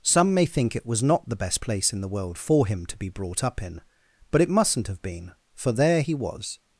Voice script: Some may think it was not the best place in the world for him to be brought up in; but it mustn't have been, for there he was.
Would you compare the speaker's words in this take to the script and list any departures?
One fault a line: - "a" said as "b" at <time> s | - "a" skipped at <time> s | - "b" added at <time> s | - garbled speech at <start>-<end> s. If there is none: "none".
none